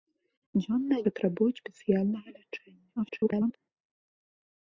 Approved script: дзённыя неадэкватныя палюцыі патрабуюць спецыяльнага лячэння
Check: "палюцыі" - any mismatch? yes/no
yes